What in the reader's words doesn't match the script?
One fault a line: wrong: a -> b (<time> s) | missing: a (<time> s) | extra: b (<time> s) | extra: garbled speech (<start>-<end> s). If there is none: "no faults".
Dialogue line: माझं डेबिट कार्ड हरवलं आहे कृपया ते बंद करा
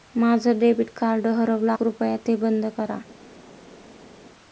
missing: आहे (1.7 s)